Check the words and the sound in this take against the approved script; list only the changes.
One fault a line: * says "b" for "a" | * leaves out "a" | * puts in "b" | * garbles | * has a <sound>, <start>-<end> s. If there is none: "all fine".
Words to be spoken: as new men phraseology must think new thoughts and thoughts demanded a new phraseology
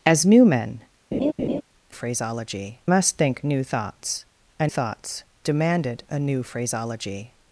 * has a laugh, 1.1-1.6 s